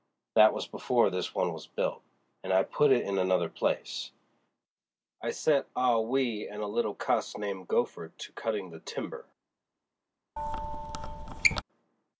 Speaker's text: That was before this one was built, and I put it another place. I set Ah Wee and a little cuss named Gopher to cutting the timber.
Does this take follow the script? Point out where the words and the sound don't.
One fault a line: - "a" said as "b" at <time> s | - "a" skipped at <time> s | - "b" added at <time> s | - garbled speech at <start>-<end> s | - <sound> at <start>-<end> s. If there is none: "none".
- "in" added at 3.0 s
- squeak at 10.4-11.6 s